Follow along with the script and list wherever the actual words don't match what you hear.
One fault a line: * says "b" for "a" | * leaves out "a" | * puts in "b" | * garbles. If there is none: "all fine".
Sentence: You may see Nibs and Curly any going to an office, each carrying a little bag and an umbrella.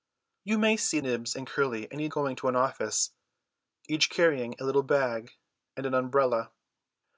all fine